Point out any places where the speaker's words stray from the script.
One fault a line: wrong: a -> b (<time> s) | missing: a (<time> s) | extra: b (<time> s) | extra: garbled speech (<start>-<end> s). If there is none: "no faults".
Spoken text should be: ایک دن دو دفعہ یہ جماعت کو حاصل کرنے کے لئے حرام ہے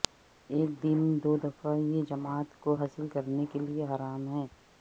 no faults